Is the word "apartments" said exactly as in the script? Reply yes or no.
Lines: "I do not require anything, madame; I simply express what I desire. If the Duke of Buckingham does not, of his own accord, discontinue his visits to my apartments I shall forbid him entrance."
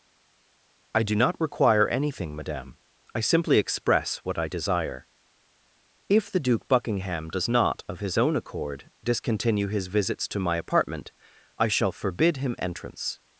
no